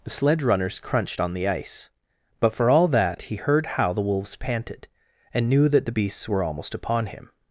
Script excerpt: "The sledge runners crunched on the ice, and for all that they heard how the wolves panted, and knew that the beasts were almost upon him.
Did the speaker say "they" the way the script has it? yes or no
no